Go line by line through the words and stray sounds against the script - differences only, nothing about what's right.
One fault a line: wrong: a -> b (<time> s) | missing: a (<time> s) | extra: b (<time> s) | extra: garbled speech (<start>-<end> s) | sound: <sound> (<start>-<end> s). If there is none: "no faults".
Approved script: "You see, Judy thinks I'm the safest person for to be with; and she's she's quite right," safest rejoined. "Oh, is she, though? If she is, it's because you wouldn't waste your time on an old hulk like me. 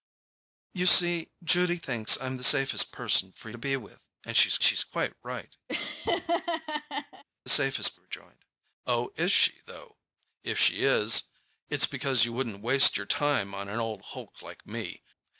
sound: laugh (5.7-7.2 s)